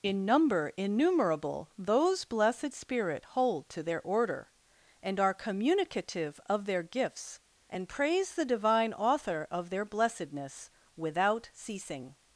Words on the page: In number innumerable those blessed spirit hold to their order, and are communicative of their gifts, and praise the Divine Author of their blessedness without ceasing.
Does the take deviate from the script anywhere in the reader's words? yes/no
no